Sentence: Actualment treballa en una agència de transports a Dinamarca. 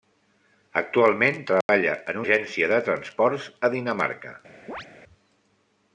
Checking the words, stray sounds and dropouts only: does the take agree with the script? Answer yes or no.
no